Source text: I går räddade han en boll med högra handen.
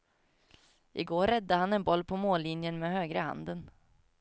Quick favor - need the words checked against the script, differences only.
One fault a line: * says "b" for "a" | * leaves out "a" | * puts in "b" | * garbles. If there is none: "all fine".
* puts in "på mållinjen"